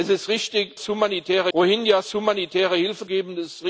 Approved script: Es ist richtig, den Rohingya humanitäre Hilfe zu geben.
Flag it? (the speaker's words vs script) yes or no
yes